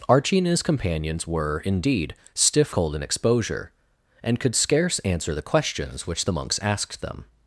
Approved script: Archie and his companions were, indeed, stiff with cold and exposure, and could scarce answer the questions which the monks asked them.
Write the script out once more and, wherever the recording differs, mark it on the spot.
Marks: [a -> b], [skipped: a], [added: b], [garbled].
Archie and his companions were, indeed, stiff [skipped: with] cold and exposure, and could scarce answer the questions which the monks asked them.